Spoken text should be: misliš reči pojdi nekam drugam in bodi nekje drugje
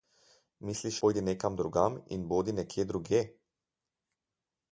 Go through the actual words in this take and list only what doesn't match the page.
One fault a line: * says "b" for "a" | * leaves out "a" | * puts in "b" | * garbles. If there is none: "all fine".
* leaves out "reči"